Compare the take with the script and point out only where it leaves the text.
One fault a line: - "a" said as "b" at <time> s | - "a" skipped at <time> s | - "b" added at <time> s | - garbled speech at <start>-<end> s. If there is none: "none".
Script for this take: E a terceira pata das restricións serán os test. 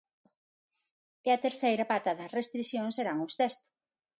none